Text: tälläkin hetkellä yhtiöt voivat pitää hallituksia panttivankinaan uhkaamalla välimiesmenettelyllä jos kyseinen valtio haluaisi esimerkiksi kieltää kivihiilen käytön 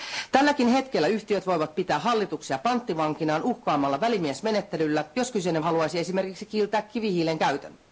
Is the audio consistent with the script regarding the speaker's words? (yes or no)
no